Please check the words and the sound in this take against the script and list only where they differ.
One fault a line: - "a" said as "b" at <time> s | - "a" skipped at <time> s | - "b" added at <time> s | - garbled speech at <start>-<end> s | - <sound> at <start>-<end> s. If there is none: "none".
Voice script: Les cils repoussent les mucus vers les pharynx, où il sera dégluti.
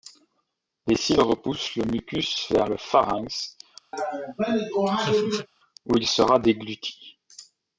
- "les" said as "le" at 1.8 s
- "les" said as "le" at 2.7 s
- laugh at 3.9-5.5 s